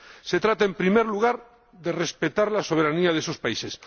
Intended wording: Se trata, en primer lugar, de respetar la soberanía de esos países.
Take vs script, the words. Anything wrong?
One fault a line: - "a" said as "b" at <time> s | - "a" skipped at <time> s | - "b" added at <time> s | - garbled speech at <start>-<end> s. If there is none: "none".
none